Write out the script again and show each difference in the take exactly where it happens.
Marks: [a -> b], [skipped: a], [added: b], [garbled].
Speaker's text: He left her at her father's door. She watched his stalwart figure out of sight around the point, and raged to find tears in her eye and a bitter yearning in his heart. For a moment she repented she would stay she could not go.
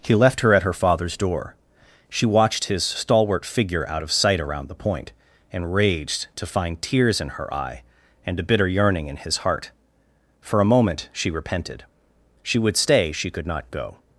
He left her at her father's door. She watched his stalwart figure out of sight around the point, and raged to find tears in her eye and a bitter yearning in his heart. For a moment she repented she would stay she could not go.